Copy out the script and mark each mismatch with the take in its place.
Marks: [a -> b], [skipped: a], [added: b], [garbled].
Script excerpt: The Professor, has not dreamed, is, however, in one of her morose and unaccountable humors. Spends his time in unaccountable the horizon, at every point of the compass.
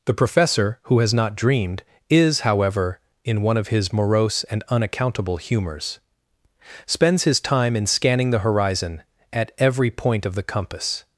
The Professor, [added: who] has not dreamed, is, however, in one of [her -> his] morose and unaccountable humors. Spends his time in [unaccountable -> scanning] the horizon, at every point of the compass.